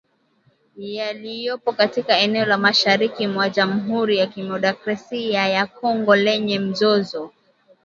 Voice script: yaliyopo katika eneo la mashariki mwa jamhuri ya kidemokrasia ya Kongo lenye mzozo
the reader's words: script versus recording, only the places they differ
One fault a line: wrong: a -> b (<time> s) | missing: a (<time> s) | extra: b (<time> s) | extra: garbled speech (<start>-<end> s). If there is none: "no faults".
no faults